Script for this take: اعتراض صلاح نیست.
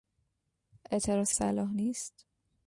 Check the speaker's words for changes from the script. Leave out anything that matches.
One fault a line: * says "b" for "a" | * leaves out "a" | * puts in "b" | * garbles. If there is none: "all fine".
all fine